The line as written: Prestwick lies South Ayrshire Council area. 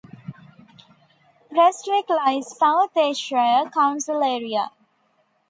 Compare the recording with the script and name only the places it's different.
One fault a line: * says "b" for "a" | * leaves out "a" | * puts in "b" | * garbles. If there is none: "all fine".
all fine